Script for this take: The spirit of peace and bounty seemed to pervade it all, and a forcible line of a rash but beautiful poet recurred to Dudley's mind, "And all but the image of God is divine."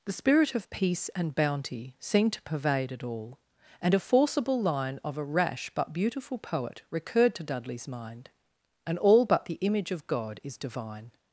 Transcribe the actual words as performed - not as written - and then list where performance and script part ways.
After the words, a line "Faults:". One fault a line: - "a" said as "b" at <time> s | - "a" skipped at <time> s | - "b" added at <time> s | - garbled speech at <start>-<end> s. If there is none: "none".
The spirit of peace and bounty seemed to pervade it all, and a forcible line of a rash but beautiful poet recurred to Dudley's mind, "And all but the image of God is divine."
Faults:
none